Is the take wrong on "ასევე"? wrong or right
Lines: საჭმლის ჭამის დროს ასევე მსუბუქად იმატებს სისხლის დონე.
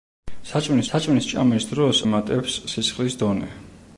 wrong